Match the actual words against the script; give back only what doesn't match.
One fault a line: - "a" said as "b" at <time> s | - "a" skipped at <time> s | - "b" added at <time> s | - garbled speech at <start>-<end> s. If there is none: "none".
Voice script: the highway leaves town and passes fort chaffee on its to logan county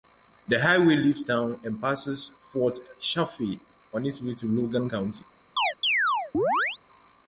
- "way" added at 4.2 s